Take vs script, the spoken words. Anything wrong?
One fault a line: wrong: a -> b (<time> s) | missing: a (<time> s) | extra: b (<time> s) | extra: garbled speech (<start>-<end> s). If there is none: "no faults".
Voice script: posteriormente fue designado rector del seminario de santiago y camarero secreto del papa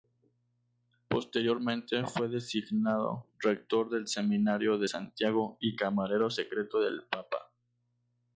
no faults